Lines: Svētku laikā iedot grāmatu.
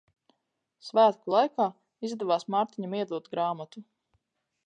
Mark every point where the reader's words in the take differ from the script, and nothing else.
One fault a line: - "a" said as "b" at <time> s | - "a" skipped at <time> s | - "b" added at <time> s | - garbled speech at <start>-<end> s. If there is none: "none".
- "izdevās Mārtiņam" added at 2.1 s